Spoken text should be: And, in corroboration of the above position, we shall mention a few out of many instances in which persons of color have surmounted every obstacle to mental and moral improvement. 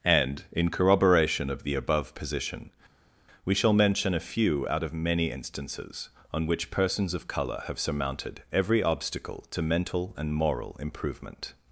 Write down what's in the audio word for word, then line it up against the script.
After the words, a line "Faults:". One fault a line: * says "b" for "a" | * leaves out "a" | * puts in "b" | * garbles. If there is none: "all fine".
And, in corroboration of the above position, we shall mention a few out of many instances on which persons of color have surmounted every obstacle to mental and moral improvement.
Faults:
* says "on" for "in"